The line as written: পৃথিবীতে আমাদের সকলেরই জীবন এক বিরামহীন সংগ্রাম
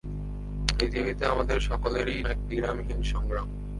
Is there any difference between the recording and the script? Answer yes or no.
yes